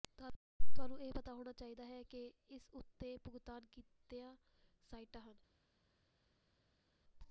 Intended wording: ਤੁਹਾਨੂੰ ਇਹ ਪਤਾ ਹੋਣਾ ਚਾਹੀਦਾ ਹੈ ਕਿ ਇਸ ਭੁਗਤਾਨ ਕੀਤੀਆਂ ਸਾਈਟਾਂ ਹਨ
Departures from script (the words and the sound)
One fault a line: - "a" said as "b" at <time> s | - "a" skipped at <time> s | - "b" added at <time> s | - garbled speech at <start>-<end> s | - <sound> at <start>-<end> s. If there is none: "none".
- "ਉੱਤੇ" added at 2.7 s